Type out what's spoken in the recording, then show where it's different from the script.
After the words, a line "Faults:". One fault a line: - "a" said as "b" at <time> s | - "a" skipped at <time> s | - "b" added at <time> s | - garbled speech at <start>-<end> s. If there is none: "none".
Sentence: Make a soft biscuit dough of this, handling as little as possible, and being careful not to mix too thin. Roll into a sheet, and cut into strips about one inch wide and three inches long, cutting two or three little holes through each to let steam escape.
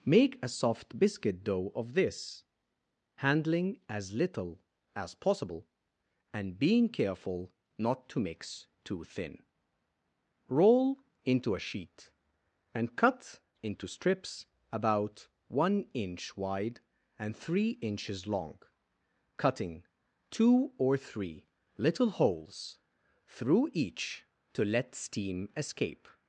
Make a soft biscuit dough of this, handling as little as possible, and being careful not to mix too thin. Roll into a sheet, and cut into strips about one inch wide and three inches long, cutting two or three little holes through each to let steam escape.
Faults:
none